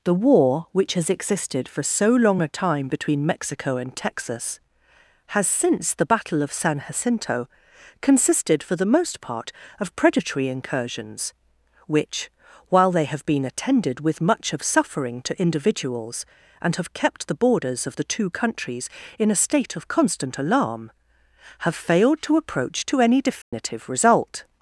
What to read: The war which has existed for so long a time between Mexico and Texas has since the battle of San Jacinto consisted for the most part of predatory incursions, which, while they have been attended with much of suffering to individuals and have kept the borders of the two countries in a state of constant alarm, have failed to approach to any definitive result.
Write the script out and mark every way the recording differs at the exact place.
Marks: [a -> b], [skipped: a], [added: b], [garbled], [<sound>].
The war which has existed for so long a time between Mexico and Texas has since the battle of San Jacinto consisted for the most part of predatory incursions, which, while they have been attended with much of suffering to individuals and have kept the borders of the two countries in a state of constant alarm, have failed to approach to any definitive [dropout] result.